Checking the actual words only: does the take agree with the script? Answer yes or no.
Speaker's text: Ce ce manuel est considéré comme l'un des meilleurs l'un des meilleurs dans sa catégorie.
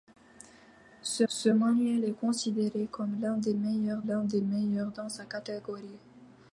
yes